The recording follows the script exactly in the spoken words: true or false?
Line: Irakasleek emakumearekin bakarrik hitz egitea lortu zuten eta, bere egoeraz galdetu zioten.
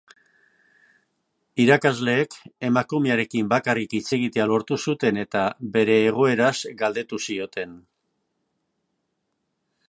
true